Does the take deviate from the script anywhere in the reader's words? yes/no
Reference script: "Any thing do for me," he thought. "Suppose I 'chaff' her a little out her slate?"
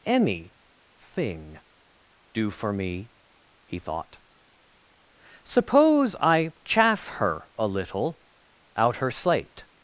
no